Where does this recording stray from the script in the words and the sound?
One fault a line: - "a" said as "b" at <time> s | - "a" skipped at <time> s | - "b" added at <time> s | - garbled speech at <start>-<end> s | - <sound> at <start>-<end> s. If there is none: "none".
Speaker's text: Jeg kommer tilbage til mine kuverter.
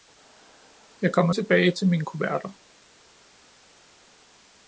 none